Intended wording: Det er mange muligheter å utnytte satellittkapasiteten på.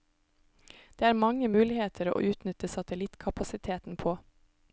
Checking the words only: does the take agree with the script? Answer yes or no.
yes